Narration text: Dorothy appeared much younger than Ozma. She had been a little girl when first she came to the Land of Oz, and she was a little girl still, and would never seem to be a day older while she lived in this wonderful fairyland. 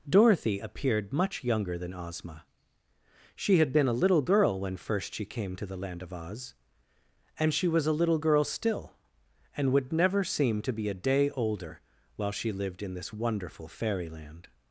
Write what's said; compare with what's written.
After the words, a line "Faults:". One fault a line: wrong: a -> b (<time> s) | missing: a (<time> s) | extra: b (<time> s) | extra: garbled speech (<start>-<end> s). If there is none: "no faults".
Dorothy appeared much younger than Ozma. She had been a little girl when first she came to the Land of Oz, and she was a little girl still, and would never seem to be a day older while she lived in this wonderful fairyland.
Faults:
no faults